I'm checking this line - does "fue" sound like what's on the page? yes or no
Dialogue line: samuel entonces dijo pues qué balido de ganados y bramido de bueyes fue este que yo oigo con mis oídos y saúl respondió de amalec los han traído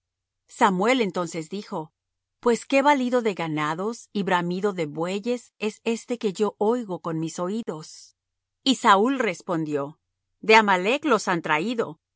no